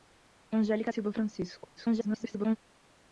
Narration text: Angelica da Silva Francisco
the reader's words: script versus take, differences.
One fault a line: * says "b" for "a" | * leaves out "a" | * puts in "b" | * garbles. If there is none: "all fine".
* leaves out "da"
* garbles